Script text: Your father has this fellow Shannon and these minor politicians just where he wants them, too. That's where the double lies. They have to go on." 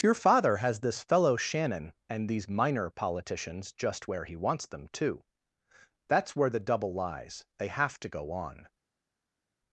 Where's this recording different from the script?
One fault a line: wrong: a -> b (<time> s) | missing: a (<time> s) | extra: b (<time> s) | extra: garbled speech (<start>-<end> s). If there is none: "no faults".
no faults